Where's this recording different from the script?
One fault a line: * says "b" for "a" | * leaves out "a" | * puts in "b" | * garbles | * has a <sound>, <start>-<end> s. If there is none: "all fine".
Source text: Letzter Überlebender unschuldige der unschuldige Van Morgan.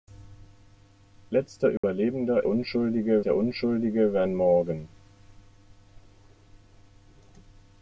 * has a dropout, 1.8-1.8 s